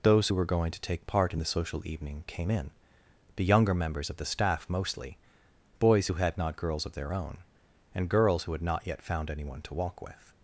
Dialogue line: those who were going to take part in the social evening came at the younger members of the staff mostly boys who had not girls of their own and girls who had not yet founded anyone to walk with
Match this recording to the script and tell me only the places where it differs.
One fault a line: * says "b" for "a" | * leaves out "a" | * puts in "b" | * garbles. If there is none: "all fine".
* says "in" for "at"
* says "found" for "founded"